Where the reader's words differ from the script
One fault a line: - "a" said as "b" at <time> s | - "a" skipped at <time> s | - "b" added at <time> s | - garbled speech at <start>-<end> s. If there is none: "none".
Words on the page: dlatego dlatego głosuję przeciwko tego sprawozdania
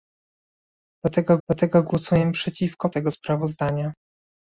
none